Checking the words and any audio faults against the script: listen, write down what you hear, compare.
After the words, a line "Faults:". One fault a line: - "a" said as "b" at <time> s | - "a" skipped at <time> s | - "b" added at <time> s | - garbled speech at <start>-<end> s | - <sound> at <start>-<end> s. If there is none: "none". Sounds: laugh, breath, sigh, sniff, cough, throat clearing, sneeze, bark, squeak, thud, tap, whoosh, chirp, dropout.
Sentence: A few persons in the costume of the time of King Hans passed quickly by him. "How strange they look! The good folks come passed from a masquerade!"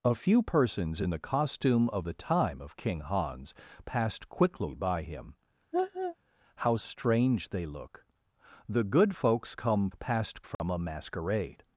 A few persons in the costume of the time of King Hans passed quickly by him. "How strange they look! The good folks come passed from a masquerade!"
Faults:
- laugh at 5.7-6.2 s
- dropout at 10.5-10.6 s